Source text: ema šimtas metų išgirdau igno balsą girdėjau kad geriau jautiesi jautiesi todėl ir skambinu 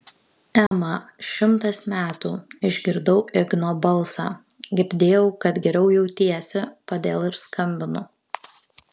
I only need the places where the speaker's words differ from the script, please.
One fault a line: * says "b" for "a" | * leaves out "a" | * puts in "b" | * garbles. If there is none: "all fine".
* leaves out "jautiesi"